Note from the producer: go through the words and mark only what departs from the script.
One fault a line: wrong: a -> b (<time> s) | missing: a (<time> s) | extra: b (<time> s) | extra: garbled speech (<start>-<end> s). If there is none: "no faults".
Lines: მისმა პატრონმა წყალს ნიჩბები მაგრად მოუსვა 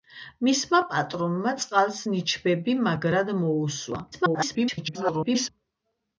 extra: garbled speech (4.1-5.5 s)